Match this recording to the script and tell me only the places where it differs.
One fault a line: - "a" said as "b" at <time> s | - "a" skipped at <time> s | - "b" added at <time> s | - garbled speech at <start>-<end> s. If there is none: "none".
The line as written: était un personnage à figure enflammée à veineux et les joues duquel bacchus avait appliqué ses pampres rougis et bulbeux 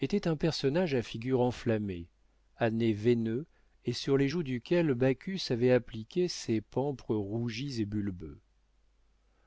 - "nez" added at 2.7 s
- "sur" added at 3.9 s